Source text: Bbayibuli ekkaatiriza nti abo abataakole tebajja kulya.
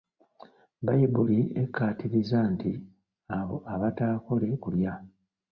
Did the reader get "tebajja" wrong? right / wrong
wrong